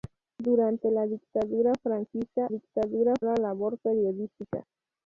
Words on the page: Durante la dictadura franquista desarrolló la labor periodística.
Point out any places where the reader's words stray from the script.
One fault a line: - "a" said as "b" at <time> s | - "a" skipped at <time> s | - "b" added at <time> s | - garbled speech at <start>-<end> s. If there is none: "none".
- "desarrolló" said as "dictadura" at 2.5 s